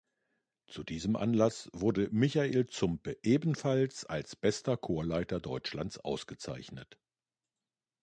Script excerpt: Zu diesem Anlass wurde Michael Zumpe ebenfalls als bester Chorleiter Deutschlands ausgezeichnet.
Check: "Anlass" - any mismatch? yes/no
no